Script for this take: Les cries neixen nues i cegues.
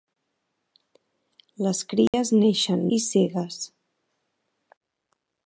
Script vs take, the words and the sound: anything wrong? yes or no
yes